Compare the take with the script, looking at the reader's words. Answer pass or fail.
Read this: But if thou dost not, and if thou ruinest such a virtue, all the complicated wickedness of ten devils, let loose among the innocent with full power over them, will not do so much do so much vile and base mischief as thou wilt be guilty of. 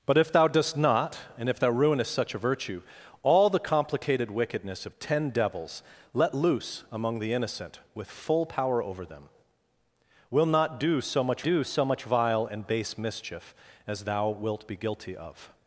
pass